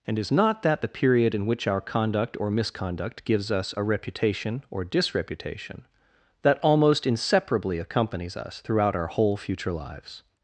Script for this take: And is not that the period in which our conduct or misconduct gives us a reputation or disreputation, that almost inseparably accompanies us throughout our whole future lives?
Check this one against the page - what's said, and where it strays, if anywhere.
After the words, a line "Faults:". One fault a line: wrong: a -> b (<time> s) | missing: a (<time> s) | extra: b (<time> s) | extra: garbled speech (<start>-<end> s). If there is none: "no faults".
And is not that the period in which our conduct or misconduct gives us a reputation or disreputation, that almost inseparably accompanies us throughout our whole future lives?
Faults:
no faults